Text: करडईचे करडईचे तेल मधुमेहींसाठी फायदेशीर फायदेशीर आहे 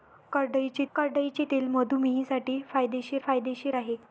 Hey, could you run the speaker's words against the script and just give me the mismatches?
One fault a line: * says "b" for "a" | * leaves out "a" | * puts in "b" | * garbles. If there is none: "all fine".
all fine